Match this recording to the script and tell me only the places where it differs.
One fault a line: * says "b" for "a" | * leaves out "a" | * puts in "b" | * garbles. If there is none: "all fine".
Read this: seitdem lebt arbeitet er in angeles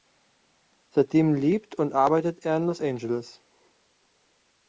* puts in "und"
* puts in "los"